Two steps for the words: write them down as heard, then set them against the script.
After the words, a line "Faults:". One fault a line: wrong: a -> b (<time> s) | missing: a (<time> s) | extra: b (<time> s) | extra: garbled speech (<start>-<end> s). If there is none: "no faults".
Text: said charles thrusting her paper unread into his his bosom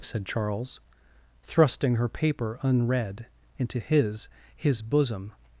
said charles thrusting her paper unread into his his bosom
Faults:
no faults